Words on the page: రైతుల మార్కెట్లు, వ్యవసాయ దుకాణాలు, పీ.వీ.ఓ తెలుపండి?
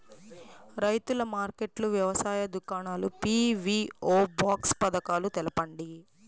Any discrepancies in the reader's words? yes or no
yes